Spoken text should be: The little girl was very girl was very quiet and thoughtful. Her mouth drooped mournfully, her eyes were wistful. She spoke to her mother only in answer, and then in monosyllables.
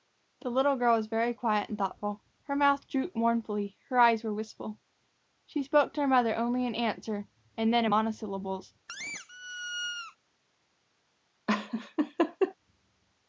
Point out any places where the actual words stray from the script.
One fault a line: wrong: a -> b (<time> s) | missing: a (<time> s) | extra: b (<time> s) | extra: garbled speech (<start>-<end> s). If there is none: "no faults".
missing: girl was very (1.3 s)